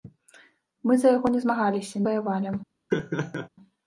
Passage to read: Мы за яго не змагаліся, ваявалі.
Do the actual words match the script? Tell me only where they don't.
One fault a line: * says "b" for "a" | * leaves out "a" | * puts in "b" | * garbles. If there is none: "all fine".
all fine